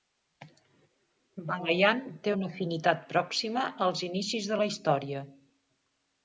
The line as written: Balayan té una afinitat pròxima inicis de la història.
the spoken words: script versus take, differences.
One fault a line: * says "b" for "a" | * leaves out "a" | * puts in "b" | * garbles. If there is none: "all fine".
* puts in "als"